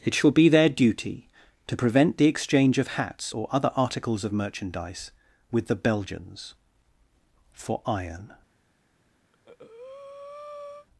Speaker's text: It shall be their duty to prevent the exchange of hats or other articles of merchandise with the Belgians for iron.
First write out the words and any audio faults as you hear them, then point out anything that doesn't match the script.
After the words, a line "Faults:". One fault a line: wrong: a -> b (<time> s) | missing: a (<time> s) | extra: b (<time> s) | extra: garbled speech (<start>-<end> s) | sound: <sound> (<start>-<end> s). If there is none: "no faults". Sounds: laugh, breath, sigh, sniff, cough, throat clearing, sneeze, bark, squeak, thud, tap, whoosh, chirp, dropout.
It shall be their duty to prevent the exchange of hats or other articles of merchandise with the Belgians for iron.
Faults:
sound: breath (9.3-10.9 s)